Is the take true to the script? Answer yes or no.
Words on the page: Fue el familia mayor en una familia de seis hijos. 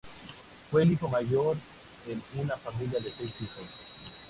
no